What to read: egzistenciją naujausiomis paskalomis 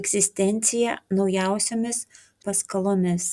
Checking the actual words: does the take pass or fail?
pass